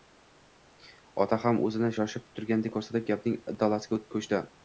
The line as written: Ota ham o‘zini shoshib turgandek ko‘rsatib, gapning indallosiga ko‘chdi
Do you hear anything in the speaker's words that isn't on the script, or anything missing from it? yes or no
no